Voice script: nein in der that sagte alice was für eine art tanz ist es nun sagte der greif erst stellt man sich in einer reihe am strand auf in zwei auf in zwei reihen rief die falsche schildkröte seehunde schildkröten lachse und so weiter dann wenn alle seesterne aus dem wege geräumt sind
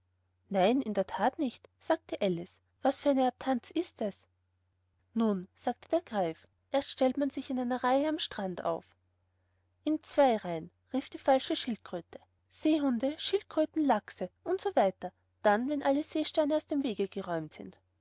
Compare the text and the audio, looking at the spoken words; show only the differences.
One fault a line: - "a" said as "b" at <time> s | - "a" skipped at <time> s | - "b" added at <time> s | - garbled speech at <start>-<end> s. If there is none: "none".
- "nicht" added at 1.4 s
- "auf in zwei" skipped at 10.4 s